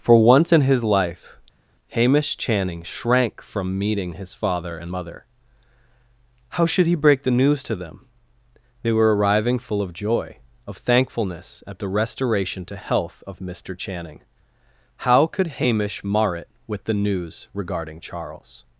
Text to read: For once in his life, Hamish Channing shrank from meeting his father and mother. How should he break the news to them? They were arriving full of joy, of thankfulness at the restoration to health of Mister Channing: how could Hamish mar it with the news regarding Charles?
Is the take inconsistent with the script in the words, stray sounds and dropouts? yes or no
no